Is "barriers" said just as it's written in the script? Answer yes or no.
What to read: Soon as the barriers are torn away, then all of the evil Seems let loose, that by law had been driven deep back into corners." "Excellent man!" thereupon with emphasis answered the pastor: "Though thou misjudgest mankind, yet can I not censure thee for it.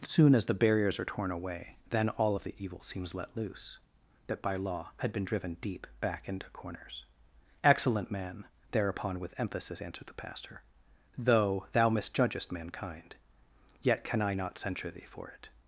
yes